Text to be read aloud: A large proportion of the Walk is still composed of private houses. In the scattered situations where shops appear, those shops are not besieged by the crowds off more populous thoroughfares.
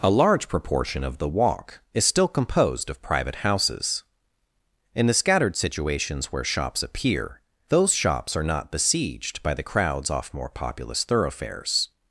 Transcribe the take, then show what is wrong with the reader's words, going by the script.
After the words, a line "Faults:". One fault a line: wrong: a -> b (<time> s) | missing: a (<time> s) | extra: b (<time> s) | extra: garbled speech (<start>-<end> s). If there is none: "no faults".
A large proportion of the Walk is still composed of private houses. In the scattered situations where shops appear, those shops are not besieged by the crowds off more populous thoroughfares.
Faults:
no faults